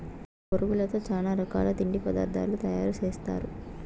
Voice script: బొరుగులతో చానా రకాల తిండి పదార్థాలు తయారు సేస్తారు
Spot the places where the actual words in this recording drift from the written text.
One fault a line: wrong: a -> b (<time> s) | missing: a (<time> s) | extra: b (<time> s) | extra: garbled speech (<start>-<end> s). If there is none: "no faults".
no faults